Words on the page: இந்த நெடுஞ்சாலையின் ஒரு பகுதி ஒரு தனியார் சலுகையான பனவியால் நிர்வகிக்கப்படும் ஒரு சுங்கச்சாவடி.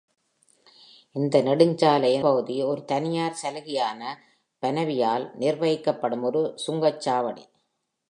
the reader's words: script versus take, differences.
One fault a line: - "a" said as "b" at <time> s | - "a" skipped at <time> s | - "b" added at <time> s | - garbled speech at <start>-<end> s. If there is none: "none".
- "ஒரு" skipped at 2.2 s